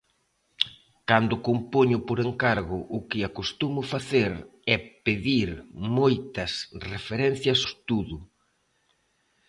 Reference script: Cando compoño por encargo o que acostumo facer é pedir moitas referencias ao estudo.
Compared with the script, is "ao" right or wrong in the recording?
wrong